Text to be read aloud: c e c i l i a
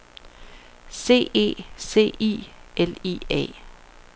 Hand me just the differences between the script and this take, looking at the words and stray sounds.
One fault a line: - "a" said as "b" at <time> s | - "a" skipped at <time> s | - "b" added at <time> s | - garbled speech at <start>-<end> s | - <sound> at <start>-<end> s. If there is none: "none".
none